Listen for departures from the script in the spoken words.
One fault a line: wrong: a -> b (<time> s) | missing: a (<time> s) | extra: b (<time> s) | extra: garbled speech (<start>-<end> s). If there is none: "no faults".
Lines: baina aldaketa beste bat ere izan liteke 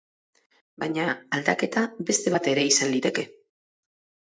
no faults